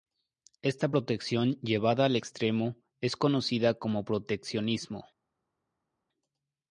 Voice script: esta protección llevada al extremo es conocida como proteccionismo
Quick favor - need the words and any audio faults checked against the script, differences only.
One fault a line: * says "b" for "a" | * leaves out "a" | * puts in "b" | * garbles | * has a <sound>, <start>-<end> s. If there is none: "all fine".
all fine